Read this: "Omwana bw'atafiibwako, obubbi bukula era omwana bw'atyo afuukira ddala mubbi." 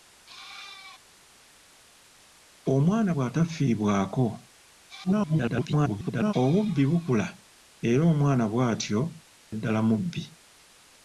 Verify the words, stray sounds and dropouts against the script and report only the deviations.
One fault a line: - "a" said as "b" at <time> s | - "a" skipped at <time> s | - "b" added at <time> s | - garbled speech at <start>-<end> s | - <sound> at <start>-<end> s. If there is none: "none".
- garbled speech at 5.0-6.3 s
- "afuukira" skipped at 9.0 s